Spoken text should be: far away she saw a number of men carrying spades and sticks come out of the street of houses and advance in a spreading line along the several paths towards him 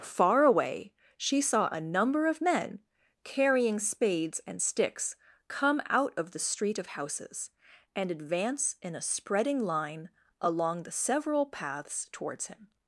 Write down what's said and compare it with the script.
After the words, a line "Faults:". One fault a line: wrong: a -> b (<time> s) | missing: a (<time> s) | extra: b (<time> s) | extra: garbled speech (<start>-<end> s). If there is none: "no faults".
far away she saw a number of men carrying spades and sticks come out of the street of houses and advance in a spreading line along the several paths towards him
Faults:
no faults